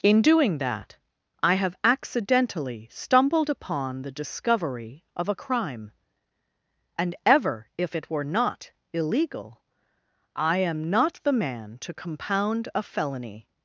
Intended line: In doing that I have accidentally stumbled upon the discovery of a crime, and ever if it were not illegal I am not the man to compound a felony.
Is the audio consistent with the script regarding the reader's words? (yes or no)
yes